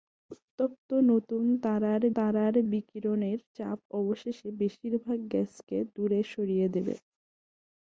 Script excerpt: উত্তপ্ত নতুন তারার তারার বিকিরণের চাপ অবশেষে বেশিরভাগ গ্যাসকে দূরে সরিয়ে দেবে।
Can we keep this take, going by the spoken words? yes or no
yes